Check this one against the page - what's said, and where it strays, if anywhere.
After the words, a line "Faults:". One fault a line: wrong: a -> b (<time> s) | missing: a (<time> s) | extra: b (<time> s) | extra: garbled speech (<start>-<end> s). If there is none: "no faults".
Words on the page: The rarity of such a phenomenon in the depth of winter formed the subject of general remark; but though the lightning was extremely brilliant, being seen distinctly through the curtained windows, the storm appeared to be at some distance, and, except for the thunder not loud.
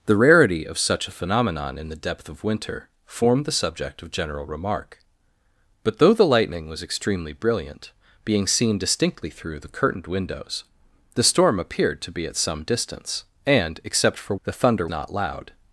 The rarity of such a phenomenon in the depth of winter formed the subject of general remark; but though the lightning was extremely brilliant, being seen distinctly through the curtained windows, the storm appeared to be at some distance, and, except for the thunder not loud.
Faults:
no faults